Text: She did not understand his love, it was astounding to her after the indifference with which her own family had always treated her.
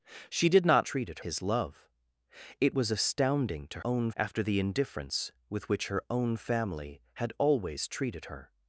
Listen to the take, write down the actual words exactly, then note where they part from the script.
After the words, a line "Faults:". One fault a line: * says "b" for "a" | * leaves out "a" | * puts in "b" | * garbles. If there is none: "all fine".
She did not treated his love, it was astounding to own after the indifference with which her own family had always treated her.
Faults:
* says "treated" for "understand"
* says "own" for "her"